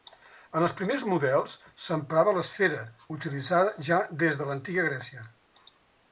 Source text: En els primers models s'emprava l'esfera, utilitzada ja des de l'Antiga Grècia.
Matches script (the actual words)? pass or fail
pass